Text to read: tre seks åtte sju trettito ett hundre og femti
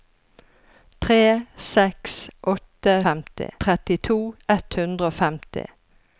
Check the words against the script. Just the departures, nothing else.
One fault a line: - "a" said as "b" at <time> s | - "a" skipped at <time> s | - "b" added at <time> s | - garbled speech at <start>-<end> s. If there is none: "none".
- "sju" said as "femti" at 3.1 s